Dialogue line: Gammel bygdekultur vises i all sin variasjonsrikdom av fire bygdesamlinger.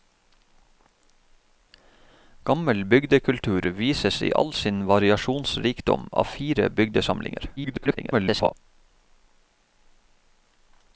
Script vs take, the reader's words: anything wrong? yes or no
yes